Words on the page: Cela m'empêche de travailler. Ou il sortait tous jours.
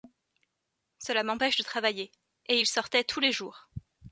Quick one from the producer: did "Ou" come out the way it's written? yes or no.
no